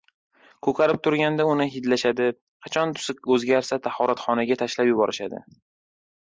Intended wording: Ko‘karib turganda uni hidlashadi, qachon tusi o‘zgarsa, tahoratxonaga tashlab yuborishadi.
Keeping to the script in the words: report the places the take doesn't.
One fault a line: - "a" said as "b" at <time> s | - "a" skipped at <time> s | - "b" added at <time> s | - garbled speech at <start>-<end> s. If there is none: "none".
none